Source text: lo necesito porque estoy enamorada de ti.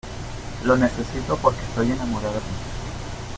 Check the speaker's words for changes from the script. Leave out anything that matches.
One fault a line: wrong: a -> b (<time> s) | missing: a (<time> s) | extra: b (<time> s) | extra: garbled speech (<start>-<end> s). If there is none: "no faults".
missing: de (2.4 s)